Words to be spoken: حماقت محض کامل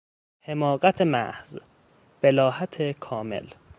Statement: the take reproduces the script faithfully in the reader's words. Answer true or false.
false